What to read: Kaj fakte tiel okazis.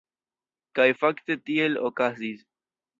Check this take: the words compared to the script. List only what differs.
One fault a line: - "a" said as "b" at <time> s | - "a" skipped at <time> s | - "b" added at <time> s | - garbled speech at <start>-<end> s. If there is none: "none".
none